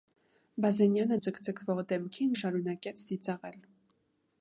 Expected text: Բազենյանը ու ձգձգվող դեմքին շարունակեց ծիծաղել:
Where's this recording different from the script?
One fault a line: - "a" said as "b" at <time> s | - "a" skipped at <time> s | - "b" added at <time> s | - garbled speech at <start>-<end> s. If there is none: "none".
none